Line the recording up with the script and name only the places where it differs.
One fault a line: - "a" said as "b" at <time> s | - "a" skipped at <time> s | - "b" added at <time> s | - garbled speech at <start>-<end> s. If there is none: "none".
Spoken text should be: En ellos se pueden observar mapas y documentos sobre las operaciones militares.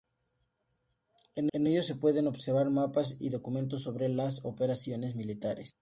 - "en" added at 1.5 s